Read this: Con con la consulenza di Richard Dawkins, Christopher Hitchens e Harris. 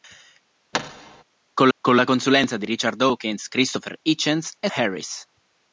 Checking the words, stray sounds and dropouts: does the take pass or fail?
fail